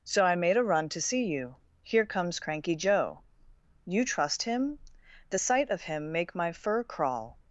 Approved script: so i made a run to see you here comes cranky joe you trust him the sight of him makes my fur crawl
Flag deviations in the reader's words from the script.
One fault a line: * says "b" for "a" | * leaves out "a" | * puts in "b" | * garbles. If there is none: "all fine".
* says "make" for "makes"